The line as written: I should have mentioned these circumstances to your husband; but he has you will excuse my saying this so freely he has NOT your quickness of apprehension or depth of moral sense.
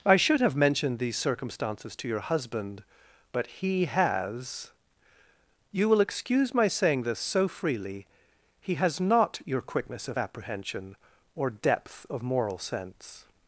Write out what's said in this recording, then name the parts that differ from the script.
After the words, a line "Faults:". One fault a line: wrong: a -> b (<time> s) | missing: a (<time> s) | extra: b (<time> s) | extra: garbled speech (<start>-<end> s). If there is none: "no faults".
I should have mentioned these circumstances to your husband; but he has you will excuse my saying this so freely he has NOT your quickness of apprehension or depth of moral sense.
Faults:
no faults